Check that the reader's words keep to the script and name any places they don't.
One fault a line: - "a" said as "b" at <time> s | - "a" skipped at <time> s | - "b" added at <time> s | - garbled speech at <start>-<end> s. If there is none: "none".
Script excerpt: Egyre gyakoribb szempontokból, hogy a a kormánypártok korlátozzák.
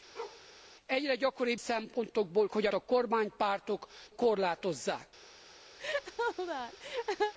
none